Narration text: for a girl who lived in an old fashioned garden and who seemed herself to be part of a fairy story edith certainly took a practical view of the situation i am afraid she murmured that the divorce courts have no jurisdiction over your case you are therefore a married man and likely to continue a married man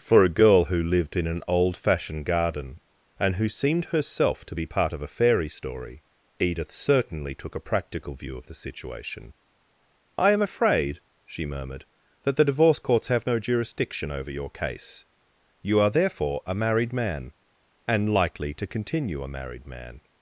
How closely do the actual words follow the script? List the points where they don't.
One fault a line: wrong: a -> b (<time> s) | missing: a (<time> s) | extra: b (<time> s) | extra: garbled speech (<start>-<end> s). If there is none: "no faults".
no faults